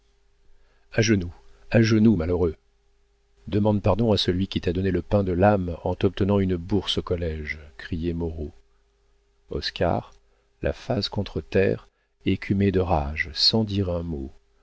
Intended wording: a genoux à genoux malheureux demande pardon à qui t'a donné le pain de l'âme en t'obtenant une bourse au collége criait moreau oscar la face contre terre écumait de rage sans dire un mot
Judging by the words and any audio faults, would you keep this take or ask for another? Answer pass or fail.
fail